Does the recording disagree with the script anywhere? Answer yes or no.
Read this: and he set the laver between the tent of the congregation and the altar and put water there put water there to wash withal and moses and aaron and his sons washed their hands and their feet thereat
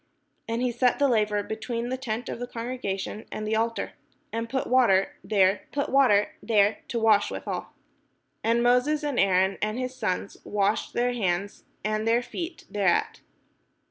no